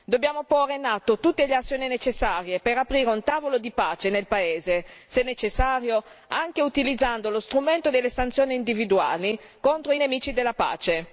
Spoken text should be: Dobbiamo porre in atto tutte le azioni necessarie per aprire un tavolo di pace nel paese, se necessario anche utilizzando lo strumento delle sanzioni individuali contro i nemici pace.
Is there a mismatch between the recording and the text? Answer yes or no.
yes